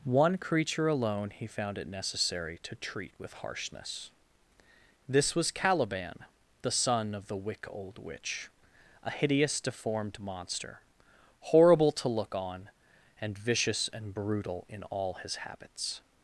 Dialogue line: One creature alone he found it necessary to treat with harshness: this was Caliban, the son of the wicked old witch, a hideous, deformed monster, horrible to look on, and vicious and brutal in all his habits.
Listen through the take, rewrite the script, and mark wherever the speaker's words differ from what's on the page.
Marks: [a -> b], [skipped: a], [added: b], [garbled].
One creature alone he found it necessary to treat with harshness: this was Caliban, the son of the [wicked -> wick] old witch, a hideous, deformed monster, horrible to look on, and vicious and brutal in all his habits.